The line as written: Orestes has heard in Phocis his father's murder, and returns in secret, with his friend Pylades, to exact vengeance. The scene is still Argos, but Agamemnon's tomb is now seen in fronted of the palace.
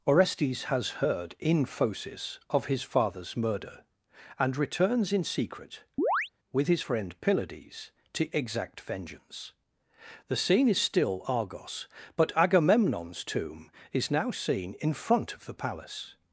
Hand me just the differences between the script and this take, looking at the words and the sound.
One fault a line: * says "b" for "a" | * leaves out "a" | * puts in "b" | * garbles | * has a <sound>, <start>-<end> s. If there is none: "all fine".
* puts in "of"
* has a chirp, 6.0-6.3 s
* says "front" for "fronted"